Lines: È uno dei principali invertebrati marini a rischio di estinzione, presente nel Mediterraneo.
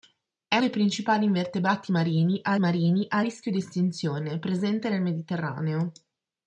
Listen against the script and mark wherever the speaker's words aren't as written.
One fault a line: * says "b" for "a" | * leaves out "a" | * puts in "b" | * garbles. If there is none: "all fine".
* leaves out "uno"
* puts in "marini a"